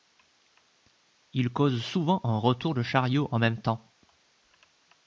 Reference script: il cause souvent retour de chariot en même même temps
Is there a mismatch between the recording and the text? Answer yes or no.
yes